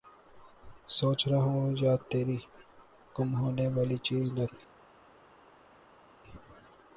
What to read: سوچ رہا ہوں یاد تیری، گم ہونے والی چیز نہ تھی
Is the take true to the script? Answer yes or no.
yes